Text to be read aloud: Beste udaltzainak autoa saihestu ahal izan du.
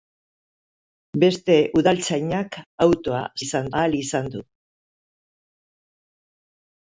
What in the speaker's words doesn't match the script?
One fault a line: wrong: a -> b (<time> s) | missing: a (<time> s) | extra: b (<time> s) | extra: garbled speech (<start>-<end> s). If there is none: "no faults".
wrong: saihestu -> izan (3.4 s)